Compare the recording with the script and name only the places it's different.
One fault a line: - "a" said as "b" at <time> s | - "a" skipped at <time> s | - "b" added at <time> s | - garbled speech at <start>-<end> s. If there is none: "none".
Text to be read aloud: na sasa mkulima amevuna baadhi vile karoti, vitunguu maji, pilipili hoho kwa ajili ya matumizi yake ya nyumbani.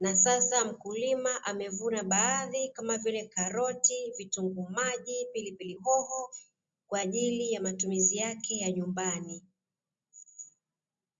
- "kama" added at 2.7 s